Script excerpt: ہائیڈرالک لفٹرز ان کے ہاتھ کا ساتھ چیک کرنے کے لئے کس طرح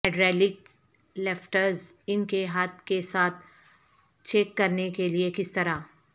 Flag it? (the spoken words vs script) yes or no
yes